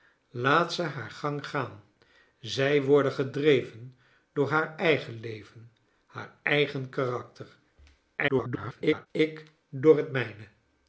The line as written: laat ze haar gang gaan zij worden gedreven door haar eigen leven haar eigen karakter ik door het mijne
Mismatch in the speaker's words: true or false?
true